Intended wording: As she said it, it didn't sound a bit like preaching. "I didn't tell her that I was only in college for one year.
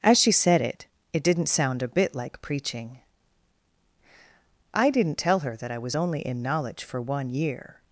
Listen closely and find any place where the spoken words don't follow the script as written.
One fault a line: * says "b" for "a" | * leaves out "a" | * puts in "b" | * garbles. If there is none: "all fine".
* says "knowledge" for "college"